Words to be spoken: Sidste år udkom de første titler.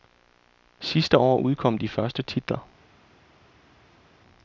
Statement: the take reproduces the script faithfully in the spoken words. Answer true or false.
true